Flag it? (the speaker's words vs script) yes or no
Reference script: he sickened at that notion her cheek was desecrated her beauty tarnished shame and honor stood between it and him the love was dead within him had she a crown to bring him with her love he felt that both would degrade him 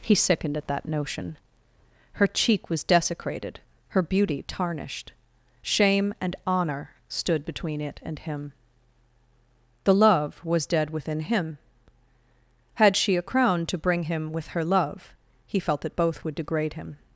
no